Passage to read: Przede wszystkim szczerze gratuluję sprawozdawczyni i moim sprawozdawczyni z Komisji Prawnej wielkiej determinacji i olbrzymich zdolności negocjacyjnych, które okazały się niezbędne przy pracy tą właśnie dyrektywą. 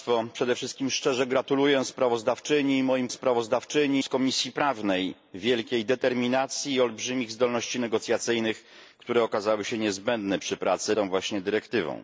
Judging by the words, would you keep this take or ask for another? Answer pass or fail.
pass